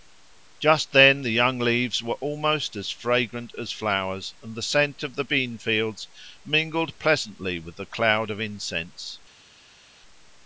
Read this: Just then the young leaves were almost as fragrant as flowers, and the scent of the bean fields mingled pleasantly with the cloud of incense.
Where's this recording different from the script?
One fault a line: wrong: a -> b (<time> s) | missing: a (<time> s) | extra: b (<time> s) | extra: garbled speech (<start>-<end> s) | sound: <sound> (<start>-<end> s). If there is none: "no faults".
no faults